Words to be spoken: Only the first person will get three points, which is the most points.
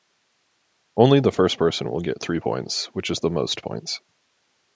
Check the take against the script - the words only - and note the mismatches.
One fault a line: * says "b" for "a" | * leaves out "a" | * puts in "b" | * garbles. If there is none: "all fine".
all fine